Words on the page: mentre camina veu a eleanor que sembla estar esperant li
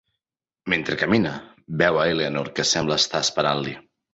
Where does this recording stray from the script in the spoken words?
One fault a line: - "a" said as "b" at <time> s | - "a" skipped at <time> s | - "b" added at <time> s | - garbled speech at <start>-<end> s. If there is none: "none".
none